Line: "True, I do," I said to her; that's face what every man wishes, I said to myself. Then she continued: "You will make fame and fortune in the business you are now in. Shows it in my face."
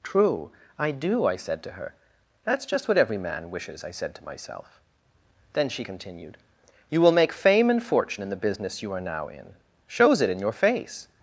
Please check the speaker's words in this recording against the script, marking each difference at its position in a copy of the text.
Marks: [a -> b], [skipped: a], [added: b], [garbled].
"True, I do," I said to her; that's [face -> just] what every man wishes, I said to myself. Then she continued: "You will make fame and fortune in the business you are now in. Shows it in [my -> your] face."